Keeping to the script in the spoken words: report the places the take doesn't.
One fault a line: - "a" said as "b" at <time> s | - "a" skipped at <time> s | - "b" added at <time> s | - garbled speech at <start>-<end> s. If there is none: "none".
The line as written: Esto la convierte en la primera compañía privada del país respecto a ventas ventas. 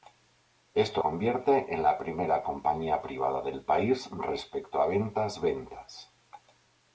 - "la" skipped at 1.0 s